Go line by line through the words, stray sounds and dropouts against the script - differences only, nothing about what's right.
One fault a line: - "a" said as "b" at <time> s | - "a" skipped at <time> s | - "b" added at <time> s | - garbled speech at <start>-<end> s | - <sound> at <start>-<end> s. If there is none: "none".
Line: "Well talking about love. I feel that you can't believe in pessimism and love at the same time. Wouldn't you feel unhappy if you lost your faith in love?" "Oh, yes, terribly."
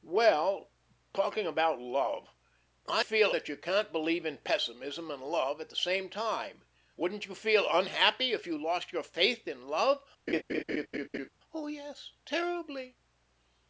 - laugh at 10.3-11.3 s